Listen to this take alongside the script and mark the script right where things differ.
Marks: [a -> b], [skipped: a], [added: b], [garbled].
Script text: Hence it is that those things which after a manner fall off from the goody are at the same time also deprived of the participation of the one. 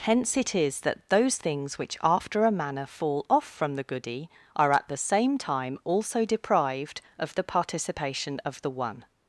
Hence it is that those things which after a manner fall off from the goody are at the same time also deprived of the participation of the one.